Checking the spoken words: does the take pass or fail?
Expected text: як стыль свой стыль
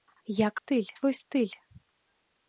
pass